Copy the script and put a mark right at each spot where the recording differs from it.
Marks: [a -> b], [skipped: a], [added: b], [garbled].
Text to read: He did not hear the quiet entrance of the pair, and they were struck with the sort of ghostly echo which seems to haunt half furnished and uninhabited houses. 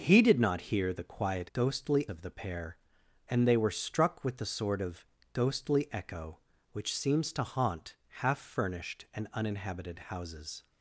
He did not hear the quiet [entrance -> ghostly] of the pair, and they were struck with the sort of ghostly echo which seems to haunt half furnished and uninhabited houses.